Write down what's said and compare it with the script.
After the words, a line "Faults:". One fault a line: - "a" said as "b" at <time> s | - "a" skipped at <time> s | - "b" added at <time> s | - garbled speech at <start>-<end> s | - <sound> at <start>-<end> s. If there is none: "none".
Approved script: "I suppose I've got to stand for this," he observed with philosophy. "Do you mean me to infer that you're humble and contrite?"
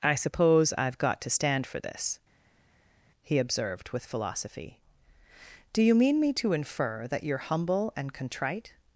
"I suppose I've got to stand for this," he observed with philosophy. "Do you mean me to infer that you're humble and contrite?"
Faults:
none